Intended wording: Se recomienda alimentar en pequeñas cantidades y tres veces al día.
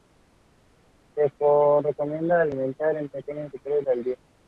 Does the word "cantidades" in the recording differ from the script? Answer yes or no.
yes